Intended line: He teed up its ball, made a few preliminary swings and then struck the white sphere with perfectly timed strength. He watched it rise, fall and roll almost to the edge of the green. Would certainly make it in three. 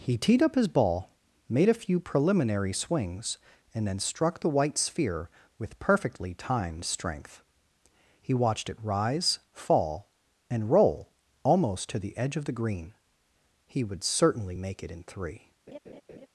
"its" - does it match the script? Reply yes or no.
no